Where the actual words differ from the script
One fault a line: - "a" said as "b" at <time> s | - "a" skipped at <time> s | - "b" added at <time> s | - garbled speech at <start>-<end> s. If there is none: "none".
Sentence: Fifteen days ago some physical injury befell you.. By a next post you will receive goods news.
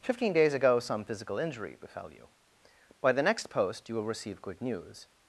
- "a" said as "the" at 3.1 s
- "goods" said as "good" at 4.4 s